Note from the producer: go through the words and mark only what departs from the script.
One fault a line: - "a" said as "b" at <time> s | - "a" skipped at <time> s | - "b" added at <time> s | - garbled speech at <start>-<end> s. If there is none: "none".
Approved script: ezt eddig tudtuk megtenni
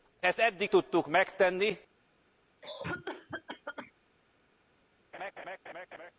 none